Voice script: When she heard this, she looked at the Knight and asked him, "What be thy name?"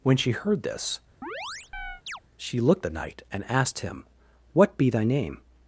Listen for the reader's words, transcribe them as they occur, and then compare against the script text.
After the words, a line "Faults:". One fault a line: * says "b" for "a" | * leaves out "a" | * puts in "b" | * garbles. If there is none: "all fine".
When she heard this, she looked the Knight and asked him, "What be thy name?"
Faults:
* leaves out "at"